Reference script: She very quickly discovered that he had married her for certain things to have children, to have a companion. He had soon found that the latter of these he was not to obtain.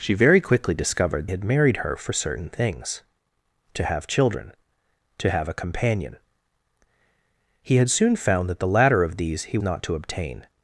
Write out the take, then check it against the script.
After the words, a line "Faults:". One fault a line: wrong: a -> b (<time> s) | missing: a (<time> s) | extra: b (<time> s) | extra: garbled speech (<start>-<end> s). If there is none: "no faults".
She very quickly discovered had married her for certain things to have children, to have a companion. He had soon found that the latter of these he not to obtain.
Faults:
missing: that he (1.3 s)
missing: was (9.6 s)